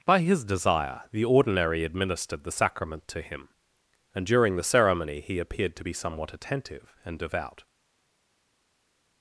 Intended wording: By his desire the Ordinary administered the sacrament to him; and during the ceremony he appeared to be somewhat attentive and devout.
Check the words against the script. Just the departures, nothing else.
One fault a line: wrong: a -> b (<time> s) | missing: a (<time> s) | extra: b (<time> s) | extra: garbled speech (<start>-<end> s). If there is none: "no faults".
no faults